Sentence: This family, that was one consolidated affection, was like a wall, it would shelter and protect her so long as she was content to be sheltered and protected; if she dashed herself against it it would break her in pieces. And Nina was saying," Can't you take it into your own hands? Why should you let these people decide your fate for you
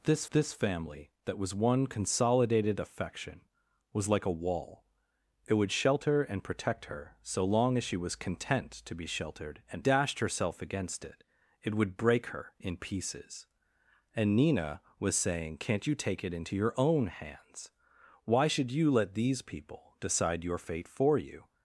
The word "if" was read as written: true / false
false